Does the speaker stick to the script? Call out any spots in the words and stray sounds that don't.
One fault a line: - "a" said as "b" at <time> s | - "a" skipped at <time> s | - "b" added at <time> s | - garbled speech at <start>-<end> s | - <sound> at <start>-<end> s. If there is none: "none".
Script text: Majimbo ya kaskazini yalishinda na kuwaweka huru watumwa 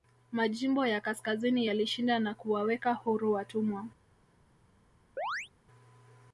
- chirp at 5.2-5.5 s